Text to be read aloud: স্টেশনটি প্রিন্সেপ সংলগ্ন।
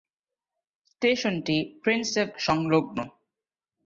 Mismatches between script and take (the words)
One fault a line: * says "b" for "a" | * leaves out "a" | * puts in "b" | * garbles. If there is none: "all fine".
all fine